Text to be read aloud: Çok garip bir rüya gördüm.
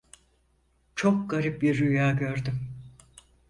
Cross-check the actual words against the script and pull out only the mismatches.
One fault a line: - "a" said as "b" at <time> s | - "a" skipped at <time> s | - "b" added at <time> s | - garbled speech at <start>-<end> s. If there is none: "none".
none